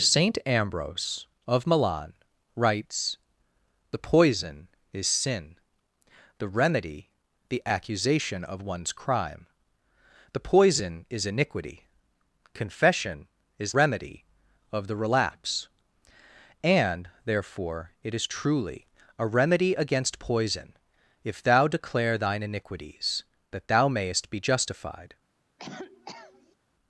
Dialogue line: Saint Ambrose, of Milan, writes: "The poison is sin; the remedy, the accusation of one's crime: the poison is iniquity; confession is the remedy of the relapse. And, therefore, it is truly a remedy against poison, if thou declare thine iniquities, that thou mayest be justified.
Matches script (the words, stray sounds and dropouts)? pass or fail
fail